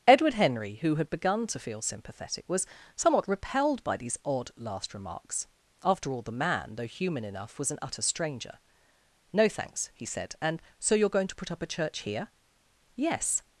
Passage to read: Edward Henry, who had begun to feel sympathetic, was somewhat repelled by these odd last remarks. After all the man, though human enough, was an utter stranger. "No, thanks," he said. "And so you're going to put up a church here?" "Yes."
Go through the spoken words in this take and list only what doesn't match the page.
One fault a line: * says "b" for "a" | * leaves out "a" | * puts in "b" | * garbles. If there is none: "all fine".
all fine